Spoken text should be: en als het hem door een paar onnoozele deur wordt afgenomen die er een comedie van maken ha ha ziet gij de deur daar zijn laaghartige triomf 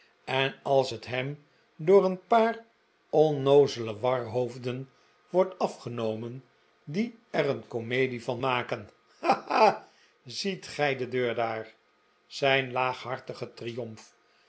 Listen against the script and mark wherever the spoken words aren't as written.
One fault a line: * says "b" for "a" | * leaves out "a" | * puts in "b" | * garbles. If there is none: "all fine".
* says "warhoofden" for "deur"